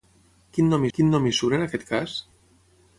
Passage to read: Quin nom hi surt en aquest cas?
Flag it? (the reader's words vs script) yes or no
yes